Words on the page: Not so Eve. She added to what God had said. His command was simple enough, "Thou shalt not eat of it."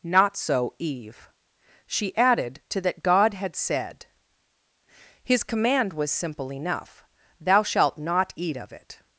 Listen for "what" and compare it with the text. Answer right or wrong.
wrong